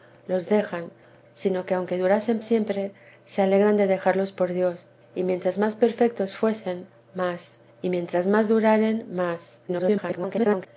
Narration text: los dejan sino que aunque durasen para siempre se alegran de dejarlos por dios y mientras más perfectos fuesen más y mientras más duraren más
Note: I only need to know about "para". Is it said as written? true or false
false